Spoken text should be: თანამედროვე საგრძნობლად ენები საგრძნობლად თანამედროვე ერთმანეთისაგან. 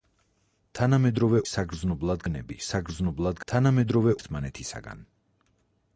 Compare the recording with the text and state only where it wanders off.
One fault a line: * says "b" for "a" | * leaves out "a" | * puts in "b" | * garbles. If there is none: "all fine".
all fine